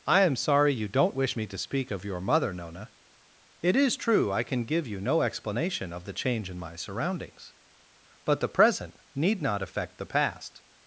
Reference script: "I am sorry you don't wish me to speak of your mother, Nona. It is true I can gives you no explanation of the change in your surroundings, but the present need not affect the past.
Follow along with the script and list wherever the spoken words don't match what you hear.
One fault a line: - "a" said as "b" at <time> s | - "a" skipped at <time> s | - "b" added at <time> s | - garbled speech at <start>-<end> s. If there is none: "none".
- "gives" said as "give" at 4.6 s
- "your" said as "my" at 6.6 s